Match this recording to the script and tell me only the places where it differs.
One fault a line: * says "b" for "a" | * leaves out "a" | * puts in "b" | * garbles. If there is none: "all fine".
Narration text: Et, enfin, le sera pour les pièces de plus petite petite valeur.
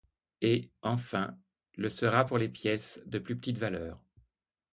* leaves out "petite"